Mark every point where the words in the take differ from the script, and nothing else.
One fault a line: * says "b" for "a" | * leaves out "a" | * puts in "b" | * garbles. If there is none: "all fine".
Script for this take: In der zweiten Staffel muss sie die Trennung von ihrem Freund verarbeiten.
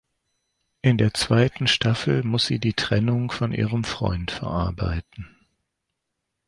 all fine